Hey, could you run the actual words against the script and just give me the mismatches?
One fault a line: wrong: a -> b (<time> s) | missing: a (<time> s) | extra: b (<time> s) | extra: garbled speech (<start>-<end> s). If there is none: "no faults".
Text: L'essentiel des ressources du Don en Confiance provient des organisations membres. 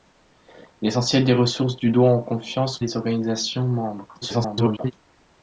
missing: provient (2.8 s)
extra: garbled speech (4.2-4.9 s)